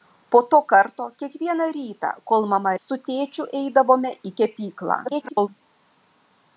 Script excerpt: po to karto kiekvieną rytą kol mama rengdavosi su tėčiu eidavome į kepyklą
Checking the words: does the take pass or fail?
fail